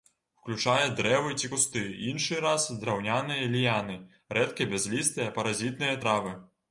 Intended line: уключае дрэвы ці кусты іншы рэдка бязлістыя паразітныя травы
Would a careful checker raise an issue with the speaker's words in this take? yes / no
yes